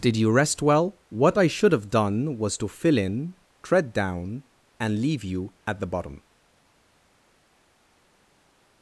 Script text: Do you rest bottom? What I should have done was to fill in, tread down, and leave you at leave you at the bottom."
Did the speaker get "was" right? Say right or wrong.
right